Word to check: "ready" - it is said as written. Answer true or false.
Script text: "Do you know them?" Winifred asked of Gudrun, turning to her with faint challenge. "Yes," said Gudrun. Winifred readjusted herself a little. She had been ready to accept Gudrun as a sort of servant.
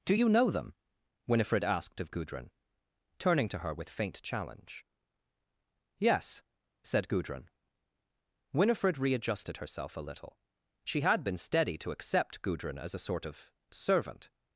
false